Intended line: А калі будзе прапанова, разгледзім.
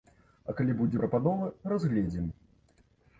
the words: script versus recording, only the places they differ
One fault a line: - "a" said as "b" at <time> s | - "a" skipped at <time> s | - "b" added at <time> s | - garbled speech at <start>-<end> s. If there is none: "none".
none